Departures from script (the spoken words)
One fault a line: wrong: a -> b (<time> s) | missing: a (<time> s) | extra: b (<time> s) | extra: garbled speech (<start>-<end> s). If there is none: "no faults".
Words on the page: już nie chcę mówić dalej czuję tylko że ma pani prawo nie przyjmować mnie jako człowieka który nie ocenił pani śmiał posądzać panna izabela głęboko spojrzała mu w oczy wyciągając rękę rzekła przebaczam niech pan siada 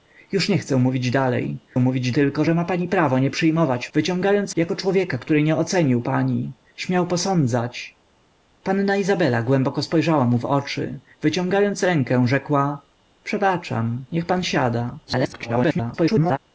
wrong: czuję -> mówić (1.8 s)
wrong: mnie -> wyciągając (3.9 s)
extra: garbled speech (15.1-16.4 s)